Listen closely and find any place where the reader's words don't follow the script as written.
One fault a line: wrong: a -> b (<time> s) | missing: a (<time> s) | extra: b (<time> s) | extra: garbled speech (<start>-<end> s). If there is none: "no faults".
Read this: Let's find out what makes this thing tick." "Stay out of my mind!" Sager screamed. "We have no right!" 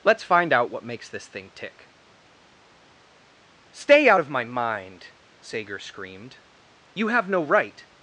wrong: We -> You (6.9 s)